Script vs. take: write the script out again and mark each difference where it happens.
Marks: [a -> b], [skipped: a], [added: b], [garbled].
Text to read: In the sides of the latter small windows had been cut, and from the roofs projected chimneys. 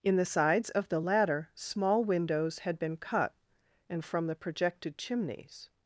In the sides of the latter small windows had been cut, and from the [skipped: roofs] projected chimneys.